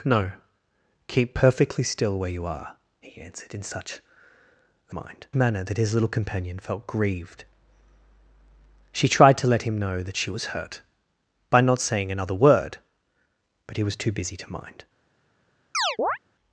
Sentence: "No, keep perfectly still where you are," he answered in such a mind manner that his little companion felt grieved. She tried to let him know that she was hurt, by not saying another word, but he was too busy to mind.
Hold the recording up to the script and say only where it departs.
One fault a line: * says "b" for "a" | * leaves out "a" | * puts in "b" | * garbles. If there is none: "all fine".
all fine